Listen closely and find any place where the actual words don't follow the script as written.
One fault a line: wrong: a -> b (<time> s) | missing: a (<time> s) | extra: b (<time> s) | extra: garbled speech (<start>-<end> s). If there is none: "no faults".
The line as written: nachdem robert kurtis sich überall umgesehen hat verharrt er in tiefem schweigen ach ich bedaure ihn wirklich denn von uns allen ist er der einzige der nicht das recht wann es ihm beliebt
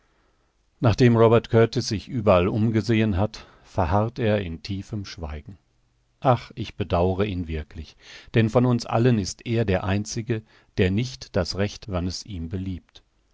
no faults